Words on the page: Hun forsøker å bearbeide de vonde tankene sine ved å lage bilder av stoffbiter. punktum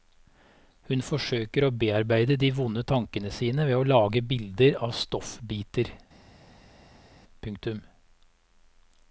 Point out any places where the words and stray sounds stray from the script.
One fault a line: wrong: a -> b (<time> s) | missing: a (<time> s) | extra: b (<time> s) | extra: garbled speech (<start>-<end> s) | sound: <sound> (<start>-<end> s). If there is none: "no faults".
no faults